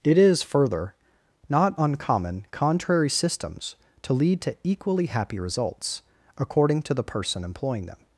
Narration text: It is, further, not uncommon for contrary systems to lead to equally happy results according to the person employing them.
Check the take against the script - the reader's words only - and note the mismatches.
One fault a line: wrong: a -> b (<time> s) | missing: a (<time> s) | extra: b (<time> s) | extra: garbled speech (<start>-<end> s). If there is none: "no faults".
missing: for (2.5 s)